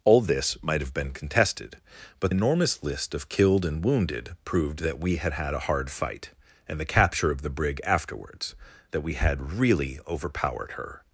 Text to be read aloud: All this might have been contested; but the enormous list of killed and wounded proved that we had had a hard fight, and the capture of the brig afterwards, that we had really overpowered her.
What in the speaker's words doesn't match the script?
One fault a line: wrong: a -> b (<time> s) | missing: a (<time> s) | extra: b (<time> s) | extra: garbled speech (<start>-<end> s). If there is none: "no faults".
missing: the (2.3 s)